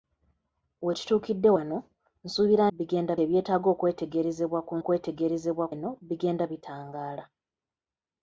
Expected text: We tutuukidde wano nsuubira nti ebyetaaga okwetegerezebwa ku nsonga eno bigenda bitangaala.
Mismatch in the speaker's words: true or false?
true